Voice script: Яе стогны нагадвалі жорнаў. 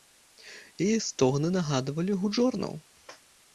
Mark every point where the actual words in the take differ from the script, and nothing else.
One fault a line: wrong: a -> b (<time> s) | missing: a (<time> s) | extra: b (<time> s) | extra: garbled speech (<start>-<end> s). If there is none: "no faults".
extra: гуд (2.2 s)